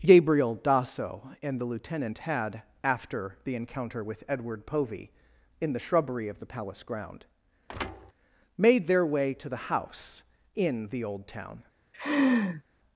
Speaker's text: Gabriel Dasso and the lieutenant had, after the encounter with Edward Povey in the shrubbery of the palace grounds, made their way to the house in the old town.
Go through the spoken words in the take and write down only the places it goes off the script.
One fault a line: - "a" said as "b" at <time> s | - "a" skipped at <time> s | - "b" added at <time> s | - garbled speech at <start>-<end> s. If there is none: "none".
- "grounds" said as "ground" at 6.8 s